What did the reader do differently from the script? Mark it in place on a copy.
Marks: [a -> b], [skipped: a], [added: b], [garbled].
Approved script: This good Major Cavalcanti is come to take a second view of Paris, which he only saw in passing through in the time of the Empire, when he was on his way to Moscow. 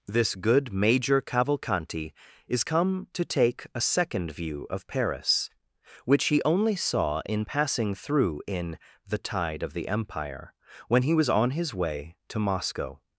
This good Major Cavalcanti is come to take a second view of Paris, which he only saw in passing through in the [time -> tide] of the Empire, when he was on his way to Moscow.